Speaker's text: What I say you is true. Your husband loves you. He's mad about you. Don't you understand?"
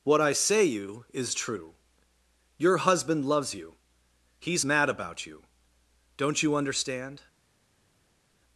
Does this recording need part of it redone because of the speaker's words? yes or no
no